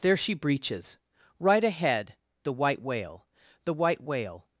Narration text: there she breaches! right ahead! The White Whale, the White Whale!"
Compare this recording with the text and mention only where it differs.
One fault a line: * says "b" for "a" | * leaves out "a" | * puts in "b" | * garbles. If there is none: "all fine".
all fine